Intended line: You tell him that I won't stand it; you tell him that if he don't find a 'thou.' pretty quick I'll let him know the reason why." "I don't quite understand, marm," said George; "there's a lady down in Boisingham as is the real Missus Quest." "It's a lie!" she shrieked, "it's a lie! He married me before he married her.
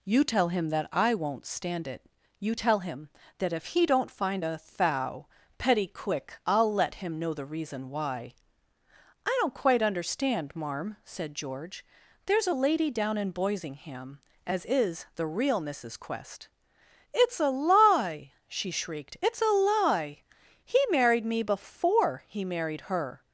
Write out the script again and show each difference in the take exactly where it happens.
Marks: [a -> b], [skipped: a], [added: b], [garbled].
You tell him that I won't stand it; you tell him that if he don't find a 'thou.' [pretty -> petty] quick I'll let him know the reason why." "I don't quite understand, marm," said George; "there's a lady down in Boisingham as is the real Missus Quest." "It's a lie!" she shrieked, "it's a lie! He married me before he married her.